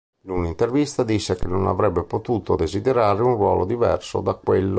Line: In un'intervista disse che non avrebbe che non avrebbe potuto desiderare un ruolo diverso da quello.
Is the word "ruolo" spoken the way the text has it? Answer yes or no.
yes